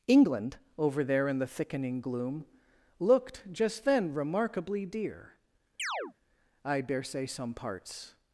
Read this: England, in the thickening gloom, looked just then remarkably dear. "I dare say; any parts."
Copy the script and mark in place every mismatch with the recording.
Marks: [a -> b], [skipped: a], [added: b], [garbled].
England, [added: over there] in the thickening gloom, looked just then remarkably dear. "I dare say; [any -> some] parts."